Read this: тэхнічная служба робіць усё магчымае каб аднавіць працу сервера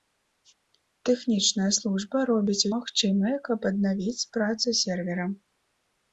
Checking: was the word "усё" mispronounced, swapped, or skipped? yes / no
yes